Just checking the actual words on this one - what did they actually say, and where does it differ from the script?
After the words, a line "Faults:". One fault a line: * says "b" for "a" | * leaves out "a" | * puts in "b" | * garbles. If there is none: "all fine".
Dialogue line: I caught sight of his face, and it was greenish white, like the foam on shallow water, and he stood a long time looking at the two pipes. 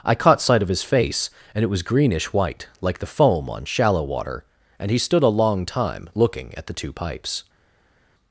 I caught sight of his face, and it was greenish white, like the foam on shallow water, and he stood a long time looking at the two pipes.
Faults:
all fine